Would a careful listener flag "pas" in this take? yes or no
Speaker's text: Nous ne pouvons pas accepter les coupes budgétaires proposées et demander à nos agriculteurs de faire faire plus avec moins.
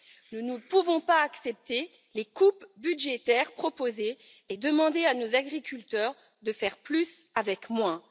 no